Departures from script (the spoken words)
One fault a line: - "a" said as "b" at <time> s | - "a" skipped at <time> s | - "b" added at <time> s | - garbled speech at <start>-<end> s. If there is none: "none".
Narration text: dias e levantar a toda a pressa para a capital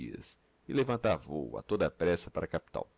- "vôo" added at 1.2 s